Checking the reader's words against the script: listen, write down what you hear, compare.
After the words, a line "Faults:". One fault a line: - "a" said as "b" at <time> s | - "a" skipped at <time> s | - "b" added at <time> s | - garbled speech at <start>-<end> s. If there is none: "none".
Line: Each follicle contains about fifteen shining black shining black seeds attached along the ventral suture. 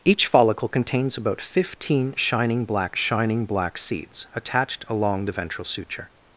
Each follicle contains about fifteen shining black shining black seeds attached along the ventral suture.
Faults:
none